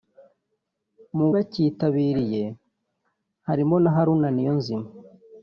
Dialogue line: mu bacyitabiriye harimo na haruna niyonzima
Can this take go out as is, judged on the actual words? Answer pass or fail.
pass